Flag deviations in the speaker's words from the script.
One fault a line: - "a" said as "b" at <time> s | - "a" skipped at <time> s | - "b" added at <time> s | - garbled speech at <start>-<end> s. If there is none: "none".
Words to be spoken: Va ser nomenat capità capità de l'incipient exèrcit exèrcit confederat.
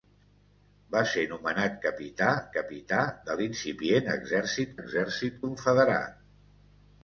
none